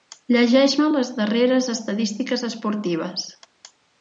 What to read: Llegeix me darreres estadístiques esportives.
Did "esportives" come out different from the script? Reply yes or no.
no